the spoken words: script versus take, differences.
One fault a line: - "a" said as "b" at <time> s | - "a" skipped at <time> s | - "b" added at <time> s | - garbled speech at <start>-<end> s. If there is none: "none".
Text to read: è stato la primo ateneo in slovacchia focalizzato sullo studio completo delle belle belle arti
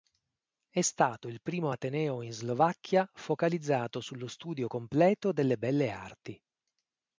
- "la" said as "il" at 1.3 s
- "belle" skipped at 5.9 s